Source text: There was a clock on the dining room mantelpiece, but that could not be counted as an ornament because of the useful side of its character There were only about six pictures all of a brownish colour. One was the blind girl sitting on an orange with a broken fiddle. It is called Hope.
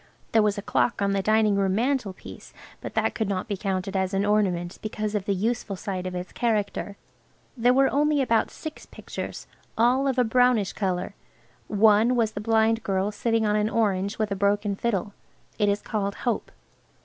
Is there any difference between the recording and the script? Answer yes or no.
no